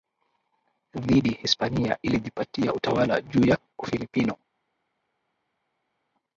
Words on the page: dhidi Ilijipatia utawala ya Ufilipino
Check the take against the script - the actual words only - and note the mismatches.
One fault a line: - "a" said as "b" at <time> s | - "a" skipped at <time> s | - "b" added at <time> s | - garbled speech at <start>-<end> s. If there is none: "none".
- "Hispania" added at 1.3 s
- "juu" added at 3.2 s